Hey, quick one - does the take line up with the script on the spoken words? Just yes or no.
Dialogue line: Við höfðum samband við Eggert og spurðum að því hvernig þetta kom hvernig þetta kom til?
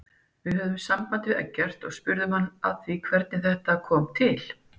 no